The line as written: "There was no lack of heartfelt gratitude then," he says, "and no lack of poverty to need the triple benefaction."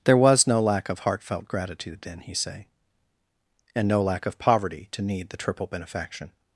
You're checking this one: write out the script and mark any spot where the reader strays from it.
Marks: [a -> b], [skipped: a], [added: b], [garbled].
"There was no lack of heartfelt gratitude then," he [says, -> say] "and no lack of poverty to need the triple benefaction."